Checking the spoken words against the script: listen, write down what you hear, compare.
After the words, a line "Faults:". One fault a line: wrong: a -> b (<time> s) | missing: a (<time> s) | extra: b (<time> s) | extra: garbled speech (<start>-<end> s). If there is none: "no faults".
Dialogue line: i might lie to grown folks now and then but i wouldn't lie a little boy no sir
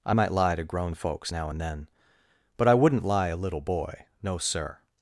i might lie to grown folks now and then but i wouldn't lie a little boy no sir
Faults:
no faults